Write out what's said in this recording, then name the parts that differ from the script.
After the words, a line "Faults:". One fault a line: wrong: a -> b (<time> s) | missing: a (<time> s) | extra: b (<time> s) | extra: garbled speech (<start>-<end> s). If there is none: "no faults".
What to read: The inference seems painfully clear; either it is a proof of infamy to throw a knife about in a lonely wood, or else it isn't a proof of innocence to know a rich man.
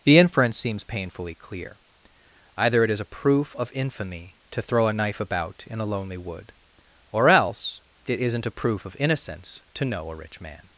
The inference seems painfully clear; either it is a proof of infamy to throw a knife about in a lonely wood, or else it isn't a proof of innocence to know a rich man.
Faults:
no faults